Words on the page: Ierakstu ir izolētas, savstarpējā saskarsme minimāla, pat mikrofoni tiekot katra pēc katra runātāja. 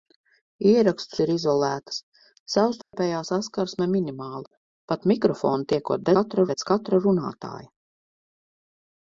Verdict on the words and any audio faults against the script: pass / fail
fail